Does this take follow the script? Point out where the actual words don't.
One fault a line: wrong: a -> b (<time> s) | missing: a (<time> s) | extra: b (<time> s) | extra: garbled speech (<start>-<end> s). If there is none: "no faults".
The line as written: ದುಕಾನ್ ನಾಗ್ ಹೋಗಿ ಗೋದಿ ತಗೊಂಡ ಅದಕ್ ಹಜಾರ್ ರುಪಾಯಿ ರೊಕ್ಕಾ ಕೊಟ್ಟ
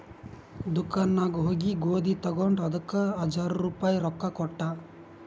no faults